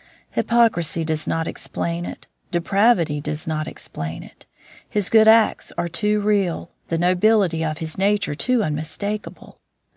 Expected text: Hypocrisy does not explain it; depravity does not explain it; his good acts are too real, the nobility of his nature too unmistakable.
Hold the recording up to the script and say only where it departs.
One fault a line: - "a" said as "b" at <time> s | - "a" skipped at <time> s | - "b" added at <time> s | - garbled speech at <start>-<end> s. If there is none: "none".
none